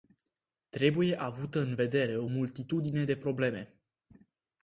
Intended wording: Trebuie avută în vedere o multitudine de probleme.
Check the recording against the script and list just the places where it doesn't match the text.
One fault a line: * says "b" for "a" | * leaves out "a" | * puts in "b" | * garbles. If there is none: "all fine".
all fine